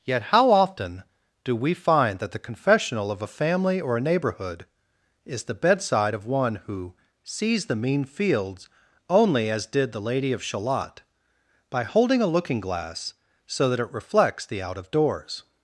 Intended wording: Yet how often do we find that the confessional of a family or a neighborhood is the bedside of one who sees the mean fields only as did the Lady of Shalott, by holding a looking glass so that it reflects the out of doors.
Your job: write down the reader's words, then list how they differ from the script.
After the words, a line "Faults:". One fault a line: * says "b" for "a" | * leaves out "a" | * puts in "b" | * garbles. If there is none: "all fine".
Yet how often do we find that the confessional of a family or a neighborhood is the bedside of one who sees the mean fields only as did the Lady of Shalott, by holding a looking glass so that it reflects the out of doors.
Faults:
all fine